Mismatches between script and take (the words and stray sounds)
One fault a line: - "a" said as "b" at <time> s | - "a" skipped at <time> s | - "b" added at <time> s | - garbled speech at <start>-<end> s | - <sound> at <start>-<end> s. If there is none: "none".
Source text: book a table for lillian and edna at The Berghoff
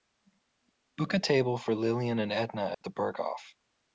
- dropout at 2.7-2.8 s